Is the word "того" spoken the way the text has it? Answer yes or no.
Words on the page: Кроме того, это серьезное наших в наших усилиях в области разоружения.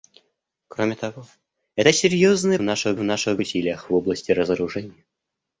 yes